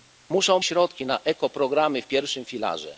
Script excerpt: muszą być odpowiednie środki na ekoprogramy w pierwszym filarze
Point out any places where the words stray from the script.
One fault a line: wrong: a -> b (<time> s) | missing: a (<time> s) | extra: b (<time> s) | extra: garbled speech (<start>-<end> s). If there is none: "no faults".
missing: być odpowiednie (0.6 s)